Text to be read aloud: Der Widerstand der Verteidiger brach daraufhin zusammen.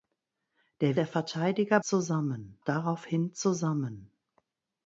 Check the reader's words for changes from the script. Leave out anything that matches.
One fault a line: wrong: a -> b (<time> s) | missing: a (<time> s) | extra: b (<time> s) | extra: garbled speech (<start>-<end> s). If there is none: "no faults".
missing: Widerstand (1.0 s)
wrong: brach -> zusammen (1.8 s)